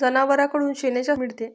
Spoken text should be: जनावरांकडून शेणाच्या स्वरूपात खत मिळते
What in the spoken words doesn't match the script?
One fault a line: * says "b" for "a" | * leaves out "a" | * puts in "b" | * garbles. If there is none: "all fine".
* leaves out "स्वरूपात खत"